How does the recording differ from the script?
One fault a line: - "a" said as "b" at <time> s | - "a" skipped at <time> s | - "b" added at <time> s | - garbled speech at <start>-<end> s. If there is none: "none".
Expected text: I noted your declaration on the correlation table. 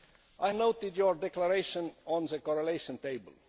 none